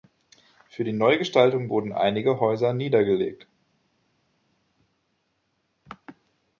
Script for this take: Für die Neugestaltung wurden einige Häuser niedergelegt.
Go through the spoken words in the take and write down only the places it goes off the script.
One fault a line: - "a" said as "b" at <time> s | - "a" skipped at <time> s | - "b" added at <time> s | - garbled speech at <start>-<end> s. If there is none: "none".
none